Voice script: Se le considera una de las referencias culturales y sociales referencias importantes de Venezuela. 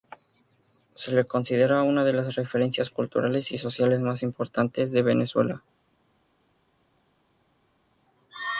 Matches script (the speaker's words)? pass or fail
fail